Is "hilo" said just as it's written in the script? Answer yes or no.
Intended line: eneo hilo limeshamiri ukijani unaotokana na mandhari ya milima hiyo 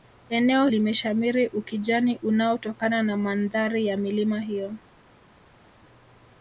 no